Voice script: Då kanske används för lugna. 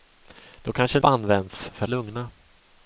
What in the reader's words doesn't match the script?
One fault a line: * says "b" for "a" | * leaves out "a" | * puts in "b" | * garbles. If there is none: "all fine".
all fine